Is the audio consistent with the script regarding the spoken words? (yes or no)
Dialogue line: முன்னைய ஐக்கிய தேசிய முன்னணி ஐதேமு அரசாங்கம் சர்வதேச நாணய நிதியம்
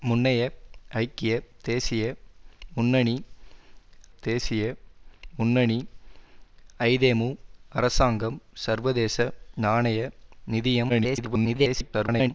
no